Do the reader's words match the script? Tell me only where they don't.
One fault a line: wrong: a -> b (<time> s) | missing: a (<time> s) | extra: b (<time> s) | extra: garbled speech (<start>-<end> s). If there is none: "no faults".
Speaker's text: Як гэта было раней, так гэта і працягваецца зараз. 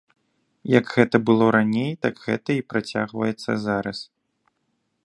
no faults